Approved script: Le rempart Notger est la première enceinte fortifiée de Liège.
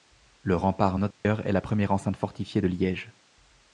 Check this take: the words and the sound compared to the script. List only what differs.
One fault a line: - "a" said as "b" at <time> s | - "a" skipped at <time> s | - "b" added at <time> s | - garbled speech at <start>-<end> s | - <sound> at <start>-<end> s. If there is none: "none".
- dropout at 1.1-1.3 s